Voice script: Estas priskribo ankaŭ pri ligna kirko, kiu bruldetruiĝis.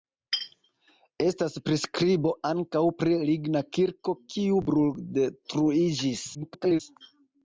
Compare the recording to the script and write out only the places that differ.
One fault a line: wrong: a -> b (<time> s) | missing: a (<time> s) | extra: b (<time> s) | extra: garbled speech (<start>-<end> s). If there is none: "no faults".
extra: garbled speech (6.3-6.8 s)